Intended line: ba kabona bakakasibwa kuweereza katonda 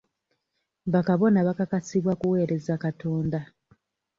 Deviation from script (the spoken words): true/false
false